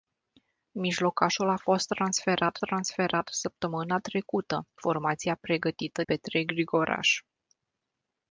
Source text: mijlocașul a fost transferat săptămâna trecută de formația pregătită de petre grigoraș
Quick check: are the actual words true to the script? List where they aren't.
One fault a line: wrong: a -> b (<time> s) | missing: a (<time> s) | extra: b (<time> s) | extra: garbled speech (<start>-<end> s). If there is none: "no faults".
extra: transferat (2.6 s)
missing: de (4.7 s)
missing: de (6.0 s)